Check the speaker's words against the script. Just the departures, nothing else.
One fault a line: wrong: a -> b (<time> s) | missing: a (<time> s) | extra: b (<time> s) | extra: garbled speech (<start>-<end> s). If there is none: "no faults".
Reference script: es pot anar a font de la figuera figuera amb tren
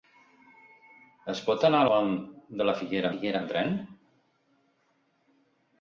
no faults